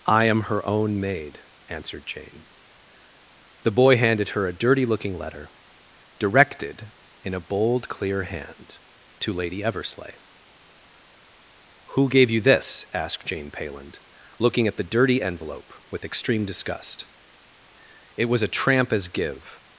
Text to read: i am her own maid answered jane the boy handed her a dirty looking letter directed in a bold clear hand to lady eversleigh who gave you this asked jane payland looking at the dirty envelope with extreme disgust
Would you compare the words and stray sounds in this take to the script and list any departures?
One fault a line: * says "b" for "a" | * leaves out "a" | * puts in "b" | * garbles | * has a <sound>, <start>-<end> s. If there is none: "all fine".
* puts in "it was a tramp as give"